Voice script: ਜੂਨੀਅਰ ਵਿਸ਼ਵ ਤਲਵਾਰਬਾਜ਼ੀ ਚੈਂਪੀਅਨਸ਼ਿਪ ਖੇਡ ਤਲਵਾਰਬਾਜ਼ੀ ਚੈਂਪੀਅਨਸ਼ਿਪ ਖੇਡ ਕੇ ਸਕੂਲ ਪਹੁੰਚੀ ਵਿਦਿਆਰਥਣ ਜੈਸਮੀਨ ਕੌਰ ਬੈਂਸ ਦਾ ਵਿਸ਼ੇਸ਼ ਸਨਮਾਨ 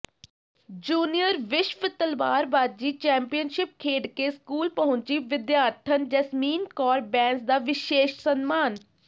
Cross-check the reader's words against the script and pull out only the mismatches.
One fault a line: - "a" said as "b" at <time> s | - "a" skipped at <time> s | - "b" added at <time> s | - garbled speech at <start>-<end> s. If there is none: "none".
- "ਤਲਵਾਰਬਾਜ਼ੀ ਚੈਂਪੀਅਨਸ਼ਿਪ ਖੇਡ" skipped at 4.1 s